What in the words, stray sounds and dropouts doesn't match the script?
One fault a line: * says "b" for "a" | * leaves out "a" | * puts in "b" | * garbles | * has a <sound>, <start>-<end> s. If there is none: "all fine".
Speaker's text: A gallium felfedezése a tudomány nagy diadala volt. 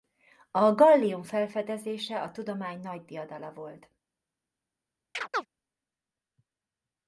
* has a chirp, 5.1-5.5 s